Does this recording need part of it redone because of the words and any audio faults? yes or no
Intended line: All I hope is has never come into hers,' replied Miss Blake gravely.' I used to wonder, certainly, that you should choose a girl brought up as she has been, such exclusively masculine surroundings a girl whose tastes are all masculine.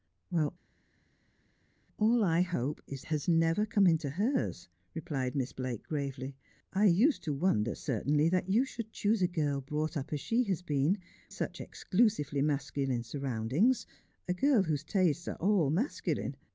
no